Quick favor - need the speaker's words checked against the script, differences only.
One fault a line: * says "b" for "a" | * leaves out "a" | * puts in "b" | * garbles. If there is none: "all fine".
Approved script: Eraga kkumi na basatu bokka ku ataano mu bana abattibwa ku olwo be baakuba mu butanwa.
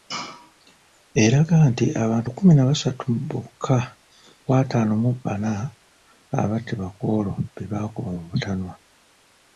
* puts in "nti abantu"